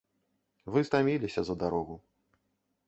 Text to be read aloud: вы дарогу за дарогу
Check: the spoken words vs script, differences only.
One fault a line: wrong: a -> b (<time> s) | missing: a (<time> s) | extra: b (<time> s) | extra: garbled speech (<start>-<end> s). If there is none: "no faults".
wrong: дарогу -> стаміліся (0.9 s)